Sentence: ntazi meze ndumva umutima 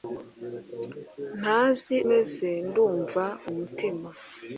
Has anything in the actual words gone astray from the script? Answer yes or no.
no